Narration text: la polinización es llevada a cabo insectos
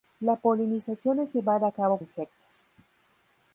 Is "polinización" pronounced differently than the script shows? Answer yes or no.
no